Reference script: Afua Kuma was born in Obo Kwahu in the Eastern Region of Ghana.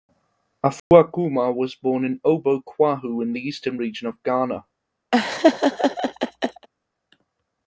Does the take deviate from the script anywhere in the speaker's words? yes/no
no